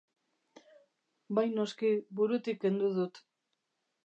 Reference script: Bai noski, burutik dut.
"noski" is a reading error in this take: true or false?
false